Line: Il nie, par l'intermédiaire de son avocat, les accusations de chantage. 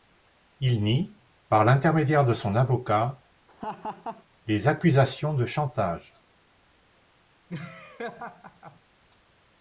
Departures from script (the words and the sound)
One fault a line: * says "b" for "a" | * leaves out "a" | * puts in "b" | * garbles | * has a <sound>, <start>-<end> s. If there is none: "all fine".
* has a laugh, 3.5-4.2 s
* has a laugh, 7.5-8.8 s